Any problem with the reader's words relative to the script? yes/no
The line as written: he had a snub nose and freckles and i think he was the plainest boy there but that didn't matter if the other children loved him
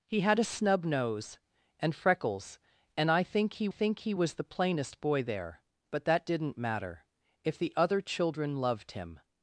yes